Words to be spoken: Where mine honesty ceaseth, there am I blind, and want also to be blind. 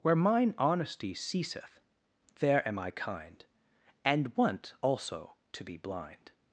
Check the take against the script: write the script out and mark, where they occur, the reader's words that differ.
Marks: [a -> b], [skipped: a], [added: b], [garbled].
Where mine honesty ceaseth, there am I [blind, -> kind] and want also to be blind.